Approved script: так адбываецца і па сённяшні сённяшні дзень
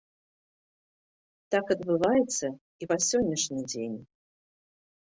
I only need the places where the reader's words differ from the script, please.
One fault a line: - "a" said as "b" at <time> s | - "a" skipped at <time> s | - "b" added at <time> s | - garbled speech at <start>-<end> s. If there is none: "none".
- "сённяшні" skipped at 3.6 s